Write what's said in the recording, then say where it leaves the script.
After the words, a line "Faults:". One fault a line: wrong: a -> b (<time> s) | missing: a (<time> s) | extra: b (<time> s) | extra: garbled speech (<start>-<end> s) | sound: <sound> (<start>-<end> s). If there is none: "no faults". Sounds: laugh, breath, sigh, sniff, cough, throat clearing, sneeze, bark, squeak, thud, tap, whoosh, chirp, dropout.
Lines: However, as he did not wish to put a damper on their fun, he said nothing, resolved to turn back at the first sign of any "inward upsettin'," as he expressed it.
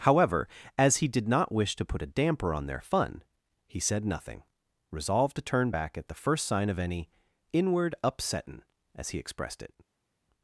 However, as he did not wish to put a damper on their fun, he said nothing, resolved to turn back at the first sign of any "inward upsettin'," as he expressed it.
Faults:
no faults